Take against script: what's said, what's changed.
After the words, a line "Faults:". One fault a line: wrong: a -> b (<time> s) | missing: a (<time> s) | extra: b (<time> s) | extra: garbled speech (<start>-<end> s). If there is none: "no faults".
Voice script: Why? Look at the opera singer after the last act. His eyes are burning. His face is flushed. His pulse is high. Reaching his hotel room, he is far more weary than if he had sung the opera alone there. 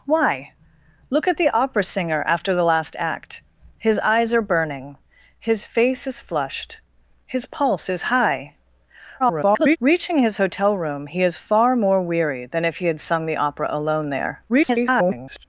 Why? Look at the opera singer after the last act. His eyes are burning. His face is flushed. His pulse is high. [garbled] Reaching his hotel room, he is far more weary than if he had sung the opera alone there. [garbled]
Faults:
extra: garbled speech (9.2-9.8 s)
extra: garbled speech (14.5-15.4 s)